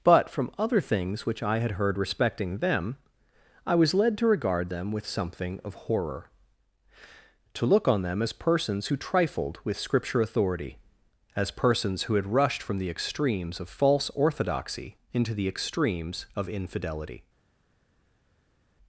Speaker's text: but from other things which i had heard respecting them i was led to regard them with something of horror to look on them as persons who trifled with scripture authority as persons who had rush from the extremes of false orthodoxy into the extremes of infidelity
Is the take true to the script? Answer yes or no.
no